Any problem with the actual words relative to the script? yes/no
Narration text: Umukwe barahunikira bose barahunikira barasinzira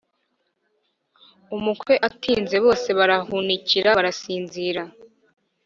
yes